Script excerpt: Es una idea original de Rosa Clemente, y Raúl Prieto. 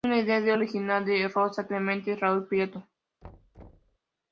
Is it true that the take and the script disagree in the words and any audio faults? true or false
true